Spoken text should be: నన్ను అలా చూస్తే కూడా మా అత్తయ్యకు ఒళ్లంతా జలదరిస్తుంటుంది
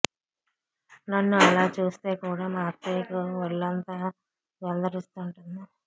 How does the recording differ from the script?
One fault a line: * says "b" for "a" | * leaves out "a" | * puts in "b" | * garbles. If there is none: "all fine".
all fine